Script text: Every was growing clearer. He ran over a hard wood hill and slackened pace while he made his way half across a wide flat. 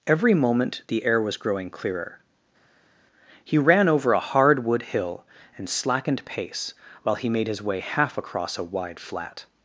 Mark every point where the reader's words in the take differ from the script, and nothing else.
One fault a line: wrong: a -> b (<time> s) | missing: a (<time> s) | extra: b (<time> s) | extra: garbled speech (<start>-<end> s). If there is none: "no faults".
extra: moment the air (0.3 s)